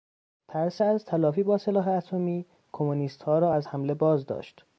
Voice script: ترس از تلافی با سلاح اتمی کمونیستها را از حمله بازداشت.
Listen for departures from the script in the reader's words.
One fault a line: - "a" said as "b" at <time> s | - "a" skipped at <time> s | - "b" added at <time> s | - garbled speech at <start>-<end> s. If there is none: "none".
none